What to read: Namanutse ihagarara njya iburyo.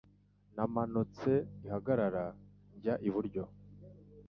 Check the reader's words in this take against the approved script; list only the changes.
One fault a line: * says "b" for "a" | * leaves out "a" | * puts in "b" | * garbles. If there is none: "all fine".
all fine